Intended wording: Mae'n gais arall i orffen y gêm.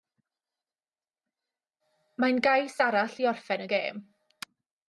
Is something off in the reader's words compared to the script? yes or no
no